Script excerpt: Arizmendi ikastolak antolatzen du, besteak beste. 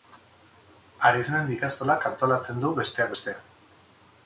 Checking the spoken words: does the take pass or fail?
pass